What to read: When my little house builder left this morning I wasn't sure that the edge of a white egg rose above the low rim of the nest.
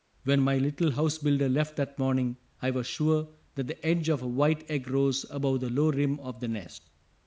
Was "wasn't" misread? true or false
true